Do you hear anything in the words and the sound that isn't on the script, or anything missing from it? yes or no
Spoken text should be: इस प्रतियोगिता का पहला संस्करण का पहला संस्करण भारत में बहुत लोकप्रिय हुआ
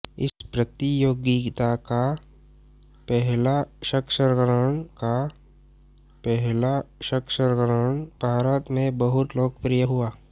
no